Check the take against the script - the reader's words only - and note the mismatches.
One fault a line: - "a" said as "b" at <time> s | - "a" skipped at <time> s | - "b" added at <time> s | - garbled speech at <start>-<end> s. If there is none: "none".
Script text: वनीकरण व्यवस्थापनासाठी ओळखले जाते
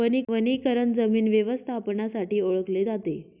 - "जमीन" added at 0.9 s